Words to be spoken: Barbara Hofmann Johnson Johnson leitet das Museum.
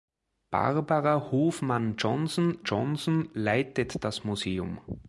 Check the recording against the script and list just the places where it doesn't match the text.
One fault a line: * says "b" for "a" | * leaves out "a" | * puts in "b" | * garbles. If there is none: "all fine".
all fine